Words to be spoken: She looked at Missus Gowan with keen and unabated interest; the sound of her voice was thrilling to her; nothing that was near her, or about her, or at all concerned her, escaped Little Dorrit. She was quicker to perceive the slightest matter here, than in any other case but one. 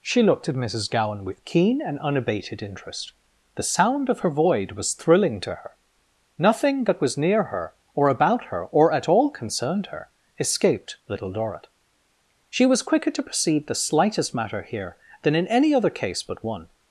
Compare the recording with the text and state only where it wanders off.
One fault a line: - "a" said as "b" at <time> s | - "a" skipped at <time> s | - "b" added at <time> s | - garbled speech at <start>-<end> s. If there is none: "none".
- "voice" said as "void" at 4.3 s